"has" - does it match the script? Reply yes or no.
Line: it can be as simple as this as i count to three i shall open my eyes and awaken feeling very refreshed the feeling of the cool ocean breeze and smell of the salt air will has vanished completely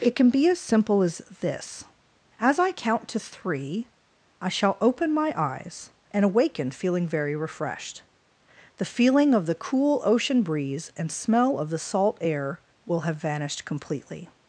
no